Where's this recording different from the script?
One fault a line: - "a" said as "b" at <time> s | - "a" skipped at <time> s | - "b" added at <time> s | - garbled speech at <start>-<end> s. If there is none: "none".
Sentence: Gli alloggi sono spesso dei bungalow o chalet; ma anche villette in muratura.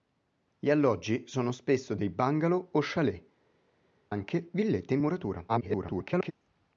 - "ma" skipped at 3.2 s
- garbled speech at 5.5-6.3 s